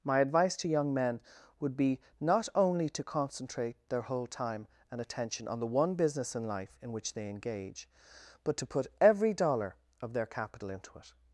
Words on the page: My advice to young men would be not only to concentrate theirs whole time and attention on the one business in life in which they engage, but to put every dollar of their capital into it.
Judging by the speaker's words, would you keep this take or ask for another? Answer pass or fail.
fail